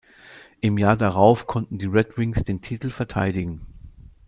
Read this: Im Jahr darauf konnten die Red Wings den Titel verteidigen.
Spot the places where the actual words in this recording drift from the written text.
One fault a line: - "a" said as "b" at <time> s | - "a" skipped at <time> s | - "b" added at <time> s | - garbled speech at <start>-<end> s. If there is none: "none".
none